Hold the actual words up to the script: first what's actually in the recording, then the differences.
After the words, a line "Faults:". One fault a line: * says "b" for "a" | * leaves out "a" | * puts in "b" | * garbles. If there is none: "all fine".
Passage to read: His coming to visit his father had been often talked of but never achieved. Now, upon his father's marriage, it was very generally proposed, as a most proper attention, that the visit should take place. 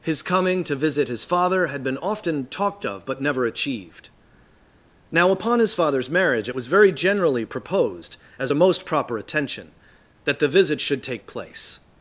His coming to visit his father had been often talked of but never achieved. Now, upon his father's marriage, it was very generally proposed, as a most proper attention, that the visit should take place.
Faults:
all fine